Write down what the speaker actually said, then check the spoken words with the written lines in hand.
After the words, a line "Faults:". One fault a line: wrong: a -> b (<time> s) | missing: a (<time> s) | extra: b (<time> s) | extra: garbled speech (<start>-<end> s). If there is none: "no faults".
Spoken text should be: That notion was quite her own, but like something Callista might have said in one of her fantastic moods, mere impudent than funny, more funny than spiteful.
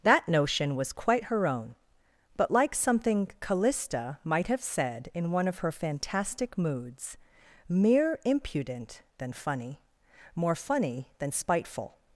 That notion was quite her own, but like something Callista might have said in one of her fantastic moods, mere impudent than funny, more funny than spiteful.
Faults:
no faults